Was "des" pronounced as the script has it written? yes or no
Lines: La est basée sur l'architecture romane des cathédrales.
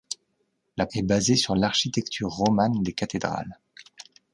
yes